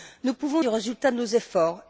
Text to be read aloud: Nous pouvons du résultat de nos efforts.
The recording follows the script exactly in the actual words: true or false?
true